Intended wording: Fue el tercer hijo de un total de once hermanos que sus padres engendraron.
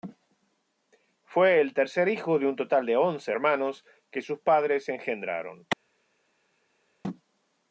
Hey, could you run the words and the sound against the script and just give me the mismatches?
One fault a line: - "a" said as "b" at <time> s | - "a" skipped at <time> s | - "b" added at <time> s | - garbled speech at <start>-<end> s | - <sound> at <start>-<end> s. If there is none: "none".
none